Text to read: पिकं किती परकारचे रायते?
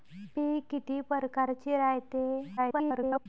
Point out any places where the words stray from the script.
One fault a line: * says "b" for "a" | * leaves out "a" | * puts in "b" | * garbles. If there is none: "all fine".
* garbles